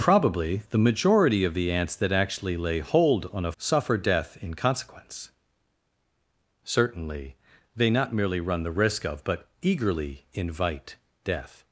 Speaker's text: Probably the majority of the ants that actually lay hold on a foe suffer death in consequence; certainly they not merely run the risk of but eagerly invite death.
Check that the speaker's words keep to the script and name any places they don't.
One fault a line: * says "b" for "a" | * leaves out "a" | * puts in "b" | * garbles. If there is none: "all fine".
* leaves out "foe"